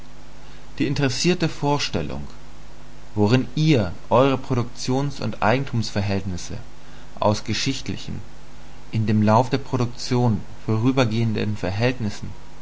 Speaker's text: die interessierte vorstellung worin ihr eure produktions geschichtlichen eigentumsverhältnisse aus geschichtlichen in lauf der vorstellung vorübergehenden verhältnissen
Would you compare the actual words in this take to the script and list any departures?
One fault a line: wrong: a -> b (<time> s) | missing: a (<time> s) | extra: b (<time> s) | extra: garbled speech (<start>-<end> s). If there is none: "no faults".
wrong: geschichtlichen -> und (5.2 s)
extra: dem (9.0 s)
wrong: vorstellung -> produktion (9.6 s)